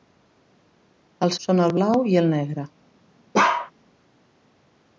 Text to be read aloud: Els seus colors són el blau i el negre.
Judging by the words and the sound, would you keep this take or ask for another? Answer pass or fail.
fail